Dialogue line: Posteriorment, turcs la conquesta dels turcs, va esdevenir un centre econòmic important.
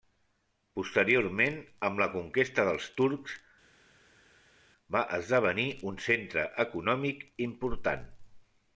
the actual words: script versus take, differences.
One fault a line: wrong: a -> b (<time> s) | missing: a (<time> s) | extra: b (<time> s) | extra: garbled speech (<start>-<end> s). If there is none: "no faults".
wrong: turcs -> amb (1.9 s)